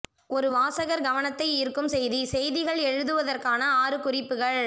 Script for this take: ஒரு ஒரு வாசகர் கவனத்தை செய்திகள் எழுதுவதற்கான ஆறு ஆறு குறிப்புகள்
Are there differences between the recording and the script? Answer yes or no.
yes